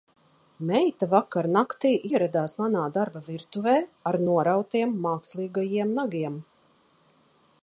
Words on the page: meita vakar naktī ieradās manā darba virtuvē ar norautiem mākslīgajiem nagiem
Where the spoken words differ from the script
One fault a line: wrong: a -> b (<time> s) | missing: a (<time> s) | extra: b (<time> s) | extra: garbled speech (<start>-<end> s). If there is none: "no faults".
no faults